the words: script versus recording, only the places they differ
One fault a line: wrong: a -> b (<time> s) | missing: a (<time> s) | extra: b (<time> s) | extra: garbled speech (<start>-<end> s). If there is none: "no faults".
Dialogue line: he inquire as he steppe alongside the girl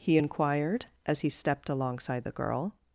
wrong: inquire -> inquired (0.2 s)
wrong: steppe -> stepped (1.3 s)